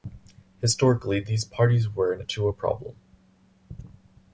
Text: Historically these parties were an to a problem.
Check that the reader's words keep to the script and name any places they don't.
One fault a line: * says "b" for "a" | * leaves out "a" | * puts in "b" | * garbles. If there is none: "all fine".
all fine